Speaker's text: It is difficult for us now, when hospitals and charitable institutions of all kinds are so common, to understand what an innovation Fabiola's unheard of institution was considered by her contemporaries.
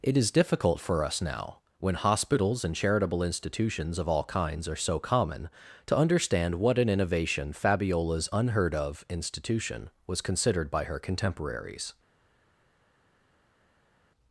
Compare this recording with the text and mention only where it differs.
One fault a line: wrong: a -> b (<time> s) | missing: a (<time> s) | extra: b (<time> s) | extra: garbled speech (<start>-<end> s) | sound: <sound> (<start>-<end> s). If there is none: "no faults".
no faults